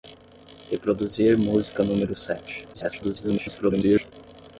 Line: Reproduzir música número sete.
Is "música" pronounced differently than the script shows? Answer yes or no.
no